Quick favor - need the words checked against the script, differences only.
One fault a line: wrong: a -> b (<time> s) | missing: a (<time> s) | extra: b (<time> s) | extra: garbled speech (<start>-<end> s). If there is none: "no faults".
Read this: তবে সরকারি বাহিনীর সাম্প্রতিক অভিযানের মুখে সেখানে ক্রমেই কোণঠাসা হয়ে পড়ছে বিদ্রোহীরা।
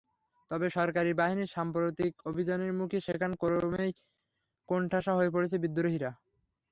no faults